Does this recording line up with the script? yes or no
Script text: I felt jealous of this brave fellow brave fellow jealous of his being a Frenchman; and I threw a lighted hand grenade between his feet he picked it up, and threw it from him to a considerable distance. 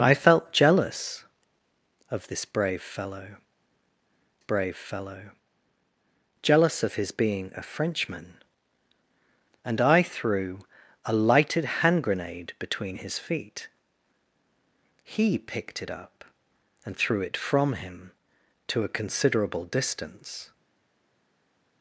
yes